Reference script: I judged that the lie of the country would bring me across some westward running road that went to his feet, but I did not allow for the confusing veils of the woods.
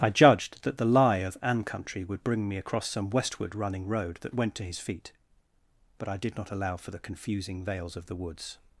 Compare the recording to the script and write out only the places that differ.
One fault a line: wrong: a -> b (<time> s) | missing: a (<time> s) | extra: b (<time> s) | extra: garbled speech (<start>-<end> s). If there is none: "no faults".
wrong: the -> an (1.4 s)